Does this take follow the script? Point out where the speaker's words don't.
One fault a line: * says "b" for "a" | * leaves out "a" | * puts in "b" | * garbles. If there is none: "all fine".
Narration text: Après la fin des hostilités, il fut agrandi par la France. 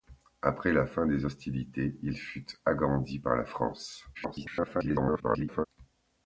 * garbles